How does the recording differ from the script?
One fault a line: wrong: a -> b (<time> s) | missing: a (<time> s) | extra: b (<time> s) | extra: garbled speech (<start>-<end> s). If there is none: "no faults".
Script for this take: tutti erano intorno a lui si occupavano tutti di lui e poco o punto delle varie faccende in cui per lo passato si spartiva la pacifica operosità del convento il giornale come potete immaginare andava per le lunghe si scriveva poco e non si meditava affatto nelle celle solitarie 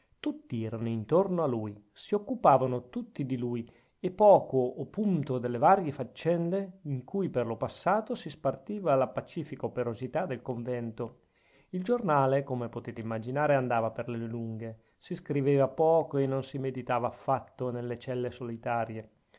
no faults